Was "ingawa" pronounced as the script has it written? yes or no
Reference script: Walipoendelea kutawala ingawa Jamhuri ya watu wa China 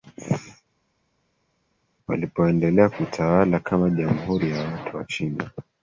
no